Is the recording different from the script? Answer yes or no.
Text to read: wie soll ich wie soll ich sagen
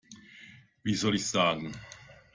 yes